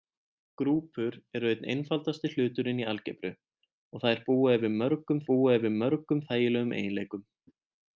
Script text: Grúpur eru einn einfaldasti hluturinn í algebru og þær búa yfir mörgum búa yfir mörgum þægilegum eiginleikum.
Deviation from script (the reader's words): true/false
false